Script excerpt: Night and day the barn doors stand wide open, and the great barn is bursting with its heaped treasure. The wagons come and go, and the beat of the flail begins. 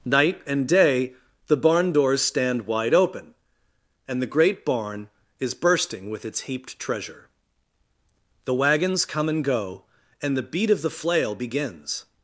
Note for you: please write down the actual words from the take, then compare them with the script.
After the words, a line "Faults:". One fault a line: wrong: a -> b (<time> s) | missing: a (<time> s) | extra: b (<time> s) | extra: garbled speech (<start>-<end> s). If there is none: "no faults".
Night and day the barn doors stand wide open, and the great barn is bursting with its heaped treasure. The wagons come and go, and the beat of the flail begins.
Faults:
no faults